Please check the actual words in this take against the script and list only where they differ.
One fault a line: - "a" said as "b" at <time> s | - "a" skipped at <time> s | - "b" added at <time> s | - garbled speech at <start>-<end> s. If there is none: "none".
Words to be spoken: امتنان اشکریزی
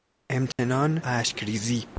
none